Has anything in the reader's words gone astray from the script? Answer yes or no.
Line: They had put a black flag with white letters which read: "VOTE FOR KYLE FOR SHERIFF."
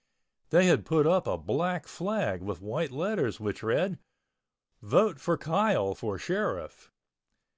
yes